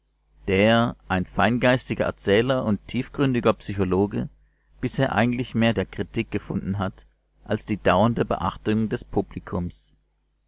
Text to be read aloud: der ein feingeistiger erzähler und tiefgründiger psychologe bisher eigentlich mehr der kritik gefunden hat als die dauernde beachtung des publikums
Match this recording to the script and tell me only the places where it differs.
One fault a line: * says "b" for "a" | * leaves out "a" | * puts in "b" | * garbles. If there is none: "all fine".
all fine